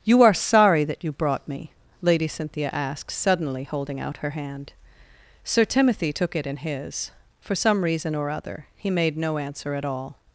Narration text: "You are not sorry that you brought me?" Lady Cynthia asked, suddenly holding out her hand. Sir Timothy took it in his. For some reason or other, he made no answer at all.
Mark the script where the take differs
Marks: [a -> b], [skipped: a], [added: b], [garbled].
"You are [skipped: not] sorry that you brought me?" Lady Cynthia asked, suddenly holding out her hand. Sir Timothy took it in his. For some reason or other, he made no answer at all.